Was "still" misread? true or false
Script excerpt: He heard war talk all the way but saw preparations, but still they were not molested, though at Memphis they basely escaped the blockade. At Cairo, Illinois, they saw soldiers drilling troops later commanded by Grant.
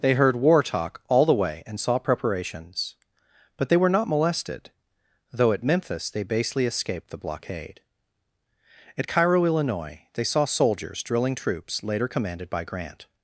true